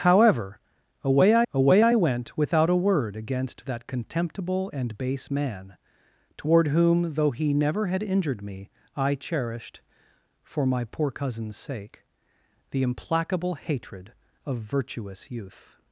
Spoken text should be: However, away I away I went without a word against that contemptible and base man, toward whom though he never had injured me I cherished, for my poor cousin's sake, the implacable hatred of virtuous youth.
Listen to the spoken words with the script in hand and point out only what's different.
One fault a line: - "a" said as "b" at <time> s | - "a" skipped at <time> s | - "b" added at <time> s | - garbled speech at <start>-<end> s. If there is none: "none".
none